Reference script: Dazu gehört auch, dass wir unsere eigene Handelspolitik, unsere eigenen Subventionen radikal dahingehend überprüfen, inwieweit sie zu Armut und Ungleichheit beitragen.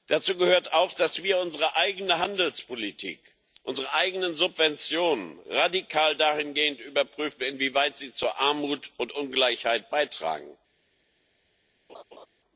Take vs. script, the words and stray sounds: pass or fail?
fail